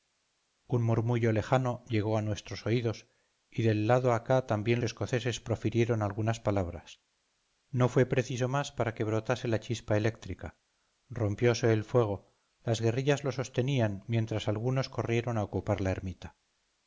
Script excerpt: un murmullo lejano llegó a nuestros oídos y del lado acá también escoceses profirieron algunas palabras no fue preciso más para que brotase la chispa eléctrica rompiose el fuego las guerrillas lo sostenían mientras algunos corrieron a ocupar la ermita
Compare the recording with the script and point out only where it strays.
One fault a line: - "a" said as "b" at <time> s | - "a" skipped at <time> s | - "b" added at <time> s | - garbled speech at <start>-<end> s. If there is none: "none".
none